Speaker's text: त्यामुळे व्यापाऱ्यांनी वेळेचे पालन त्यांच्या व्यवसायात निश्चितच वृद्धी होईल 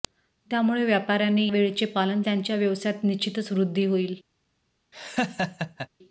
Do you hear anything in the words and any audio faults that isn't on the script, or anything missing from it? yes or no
yes